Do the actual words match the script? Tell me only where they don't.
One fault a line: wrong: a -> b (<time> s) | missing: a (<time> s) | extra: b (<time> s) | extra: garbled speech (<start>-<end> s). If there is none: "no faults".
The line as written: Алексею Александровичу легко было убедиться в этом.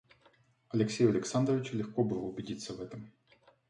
no faults